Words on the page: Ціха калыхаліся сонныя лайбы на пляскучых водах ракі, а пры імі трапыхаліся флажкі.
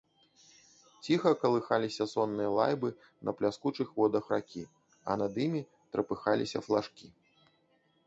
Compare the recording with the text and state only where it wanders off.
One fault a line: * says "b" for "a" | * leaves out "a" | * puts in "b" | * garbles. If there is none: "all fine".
* says "над" for "пры"